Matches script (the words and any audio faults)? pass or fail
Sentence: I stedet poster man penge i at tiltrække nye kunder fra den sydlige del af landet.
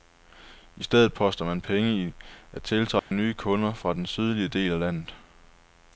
fail